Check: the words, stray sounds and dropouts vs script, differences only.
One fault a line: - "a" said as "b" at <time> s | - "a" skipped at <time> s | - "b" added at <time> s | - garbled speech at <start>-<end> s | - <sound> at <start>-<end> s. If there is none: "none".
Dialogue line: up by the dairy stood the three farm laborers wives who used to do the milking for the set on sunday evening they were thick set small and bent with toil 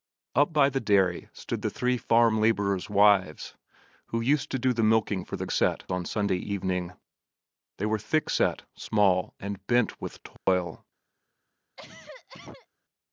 - dropout at 10.4-10.5 s
- cough at 11.8-12.7 s